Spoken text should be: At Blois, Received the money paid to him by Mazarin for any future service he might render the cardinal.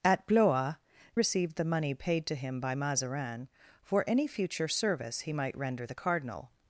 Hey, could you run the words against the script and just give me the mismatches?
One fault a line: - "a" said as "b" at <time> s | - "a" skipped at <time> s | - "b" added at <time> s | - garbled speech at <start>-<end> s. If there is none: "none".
none